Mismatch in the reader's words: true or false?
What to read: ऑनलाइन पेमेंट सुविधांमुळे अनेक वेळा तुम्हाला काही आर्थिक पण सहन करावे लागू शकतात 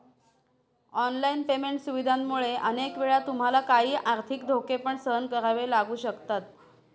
true